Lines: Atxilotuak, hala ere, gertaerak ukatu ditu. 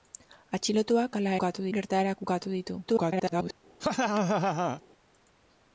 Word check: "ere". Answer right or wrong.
wrong